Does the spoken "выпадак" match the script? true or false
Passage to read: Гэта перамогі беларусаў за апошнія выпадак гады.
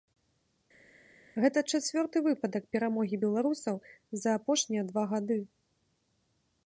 false